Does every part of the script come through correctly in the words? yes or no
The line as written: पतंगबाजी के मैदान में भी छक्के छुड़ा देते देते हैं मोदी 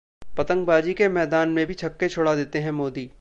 no